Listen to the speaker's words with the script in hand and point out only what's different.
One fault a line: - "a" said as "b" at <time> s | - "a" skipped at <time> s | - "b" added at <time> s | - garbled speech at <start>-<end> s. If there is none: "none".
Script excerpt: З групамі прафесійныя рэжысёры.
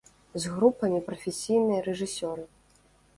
none